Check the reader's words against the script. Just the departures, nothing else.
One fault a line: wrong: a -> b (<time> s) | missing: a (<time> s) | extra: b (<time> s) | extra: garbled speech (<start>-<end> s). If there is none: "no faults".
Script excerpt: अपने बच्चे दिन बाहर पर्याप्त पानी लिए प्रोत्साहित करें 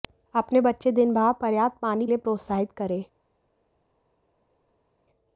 no faults